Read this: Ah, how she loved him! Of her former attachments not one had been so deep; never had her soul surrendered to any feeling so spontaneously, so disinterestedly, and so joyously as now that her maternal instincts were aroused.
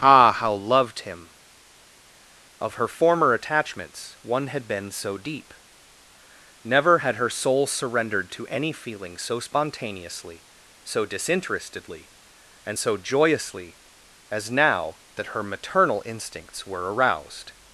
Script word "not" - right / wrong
wrong